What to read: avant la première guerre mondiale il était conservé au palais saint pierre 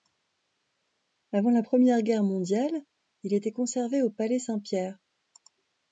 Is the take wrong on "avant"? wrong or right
right